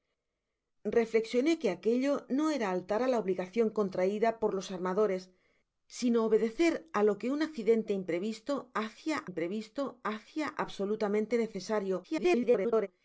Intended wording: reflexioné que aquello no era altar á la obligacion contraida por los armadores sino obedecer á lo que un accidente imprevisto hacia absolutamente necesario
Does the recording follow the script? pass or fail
fail